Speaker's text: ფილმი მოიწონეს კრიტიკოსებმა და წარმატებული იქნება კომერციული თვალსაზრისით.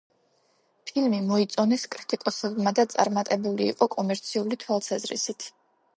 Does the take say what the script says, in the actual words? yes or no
no